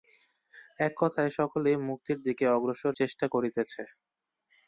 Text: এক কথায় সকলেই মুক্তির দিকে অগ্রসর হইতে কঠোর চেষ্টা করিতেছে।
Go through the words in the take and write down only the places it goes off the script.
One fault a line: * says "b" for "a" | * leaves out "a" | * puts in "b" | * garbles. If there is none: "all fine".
* leaves out "হইতে কঠোর"